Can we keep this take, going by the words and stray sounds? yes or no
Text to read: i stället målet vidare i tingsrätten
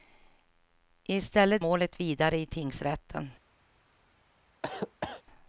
no